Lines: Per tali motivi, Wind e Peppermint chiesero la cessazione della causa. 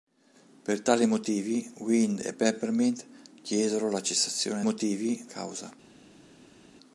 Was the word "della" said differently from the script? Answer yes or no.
yes